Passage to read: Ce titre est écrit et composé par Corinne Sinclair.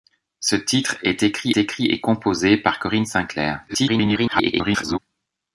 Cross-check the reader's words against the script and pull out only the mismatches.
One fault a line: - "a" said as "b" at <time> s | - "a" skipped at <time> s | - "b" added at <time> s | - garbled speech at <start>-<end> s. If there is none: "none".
- "écrit" added at 1.6 s
- garbled speech at 3.7-5.0 s